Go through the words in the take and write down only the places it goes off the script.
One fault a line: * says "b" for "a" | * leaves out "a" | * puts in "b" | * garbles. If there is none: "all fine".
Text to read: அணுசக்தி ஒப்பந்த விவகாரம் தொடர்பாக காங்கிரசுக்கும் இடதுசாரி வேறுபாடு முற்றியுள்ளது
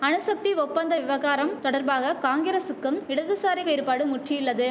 all fine